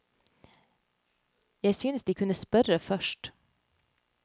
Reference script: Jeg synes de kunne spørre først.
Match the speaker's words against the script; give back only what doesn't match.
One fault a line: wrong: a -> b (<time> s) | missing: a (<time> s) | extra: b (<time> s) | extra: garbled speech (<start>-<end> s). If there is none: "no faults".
no faults